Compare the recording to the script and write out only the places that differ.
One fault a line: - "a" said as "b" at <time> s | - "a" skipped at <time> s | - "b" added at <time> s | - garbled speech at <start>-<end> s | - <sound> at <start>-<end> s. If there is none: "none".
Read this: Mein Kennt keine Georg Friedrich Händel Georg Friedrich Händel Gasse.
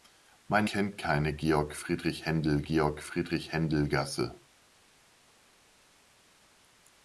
none